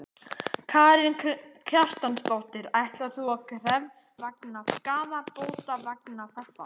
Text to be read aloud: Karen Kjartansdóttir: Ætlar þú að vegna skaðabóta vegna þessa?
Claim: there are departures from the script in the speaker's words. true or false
false